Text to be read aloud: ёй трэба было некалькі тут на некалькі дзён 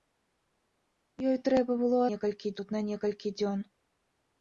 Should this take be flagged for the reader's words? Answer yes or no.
no